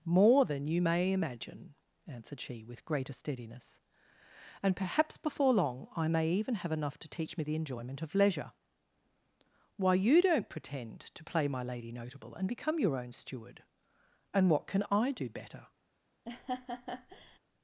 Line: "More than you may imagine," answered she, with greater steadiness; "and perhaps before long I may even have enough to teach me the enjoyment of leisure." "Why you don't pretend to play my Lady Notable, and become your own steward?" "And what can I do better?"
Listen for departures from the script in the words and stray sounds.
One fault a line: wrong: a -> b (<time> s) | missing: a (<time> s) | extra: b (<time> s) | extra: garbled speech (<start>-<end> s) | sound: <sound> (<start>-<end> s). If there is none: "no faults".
sound: laugh (16.3-17.4 s)